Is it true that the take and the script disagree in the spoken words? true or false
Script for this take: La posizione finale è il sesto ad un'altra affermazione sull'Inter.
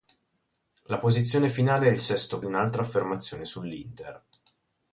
false